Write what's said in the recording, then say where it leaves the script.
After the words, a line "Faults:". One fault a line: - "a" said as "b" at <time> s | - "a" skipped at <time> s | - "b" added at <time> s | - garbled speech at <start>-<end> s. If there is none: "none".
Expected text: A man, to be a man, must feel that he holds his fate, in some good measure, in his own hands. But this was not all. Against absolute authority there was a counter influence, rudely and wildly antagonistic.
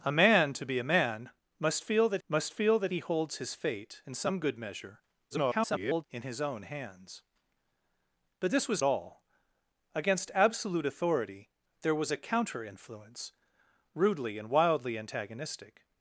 A man, to be a man, must feel that must feel that he holds his fate, in some good measure, [garbled] in his own hands. But this was all. Against absolute authority there was a counter influence, rudely and wildly antagonistic.
Faults:
- "must feel that" added at 2.3 s
- garbled speech at 5.3-6.1 s
- "not" skipped at 8.8 s